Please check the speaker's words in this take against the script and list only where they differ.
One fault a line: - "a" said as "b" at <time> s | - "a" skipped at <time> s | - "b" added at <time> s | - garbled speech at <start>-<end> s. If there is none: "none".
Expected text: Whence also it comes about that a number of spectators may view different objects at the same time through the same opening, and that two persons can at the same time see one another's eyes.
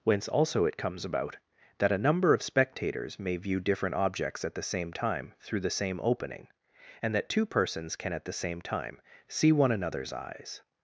none